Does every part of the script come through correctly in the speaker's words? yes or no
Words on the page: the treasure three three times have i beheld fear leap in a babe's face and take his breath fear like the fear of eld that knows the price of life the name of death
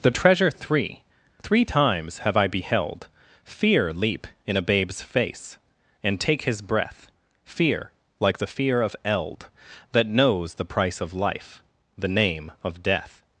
yes